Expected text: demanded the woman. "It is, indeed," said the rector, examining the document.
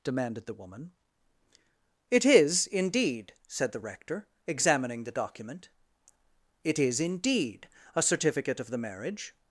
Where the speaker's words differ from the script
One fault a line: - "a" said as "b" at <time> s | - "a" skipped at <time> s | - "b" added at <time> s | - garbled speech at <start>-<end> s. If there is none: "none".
- "It is indeed a certificate of the marriage" added at 6.6 s